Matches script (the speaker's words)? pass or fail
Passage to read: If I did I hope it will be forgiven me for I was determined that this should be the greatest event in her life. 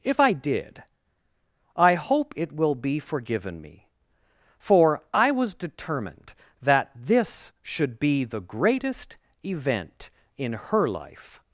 pass